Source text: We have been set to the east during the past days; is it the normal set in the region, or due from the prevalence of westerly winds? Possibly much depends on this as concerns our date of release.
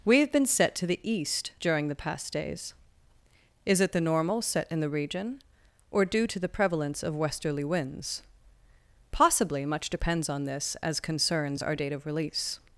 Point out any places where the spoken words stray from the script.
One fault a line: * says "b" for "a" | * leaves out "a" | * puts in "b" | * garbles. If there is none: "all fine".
* says "to" for "from"